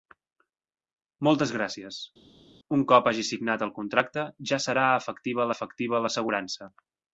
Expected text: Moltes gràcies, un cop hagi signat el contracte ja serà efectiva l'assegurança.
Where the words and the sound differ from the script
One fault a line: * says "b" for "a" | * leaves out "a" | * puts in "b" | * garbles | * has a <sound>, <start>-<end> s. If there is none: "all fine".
* puts in "efectiva"